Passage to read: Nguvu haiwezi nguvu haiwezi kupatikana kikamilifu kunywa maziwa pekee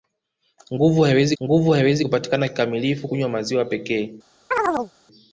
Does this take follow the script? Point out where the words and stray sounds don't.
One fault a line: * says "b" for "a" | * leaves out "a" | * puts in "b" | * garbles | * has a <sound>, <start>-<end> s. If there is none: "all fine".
* has a chirp, 4.5-4.9 s